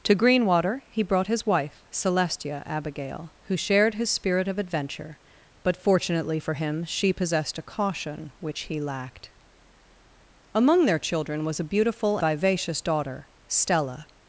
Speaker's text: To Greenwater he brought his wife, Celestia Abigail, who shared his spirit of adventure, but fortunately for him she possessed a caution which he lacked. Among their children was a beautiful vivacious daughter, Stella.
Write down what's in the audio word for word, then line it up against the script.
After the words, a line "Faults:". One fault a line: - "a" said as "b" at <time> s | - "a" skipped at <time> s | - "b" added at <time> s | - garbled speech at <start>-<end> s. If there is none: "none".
To Greenwater he brought his wife, Celestia Abigail, who shared his spirit of adventure, but fortunately for him she possessed a caution which he lacked. Among their children was a beautiful vivacious daughter, Stella.
Faults:
none